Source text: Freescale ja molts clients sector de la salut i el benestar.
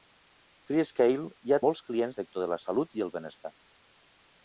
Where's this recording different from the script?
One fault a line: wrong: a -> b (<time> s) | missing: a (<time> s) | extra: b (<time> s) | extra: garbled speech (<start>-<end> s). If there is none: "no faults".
no faults